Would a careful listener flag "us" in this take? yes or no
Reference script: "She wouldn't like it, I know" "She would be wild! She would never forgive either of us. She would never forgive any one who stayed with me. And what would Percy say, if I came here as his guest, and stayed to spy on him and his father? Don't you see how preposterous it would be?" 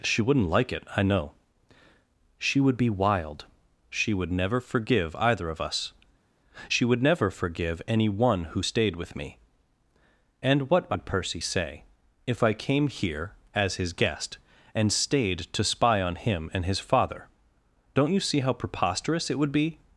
no